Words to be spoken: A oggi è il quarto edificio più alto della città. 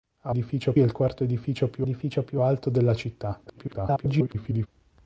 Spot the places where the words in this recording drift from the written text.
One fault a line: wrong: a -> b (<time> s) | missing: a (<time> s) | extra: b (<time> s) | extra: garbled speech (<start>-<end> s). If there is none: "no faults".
wrong: oggi -> edificio (0.3 s)
extra: edificio più (1.8 s)
extra: garbled speech (3.5-4.7 s)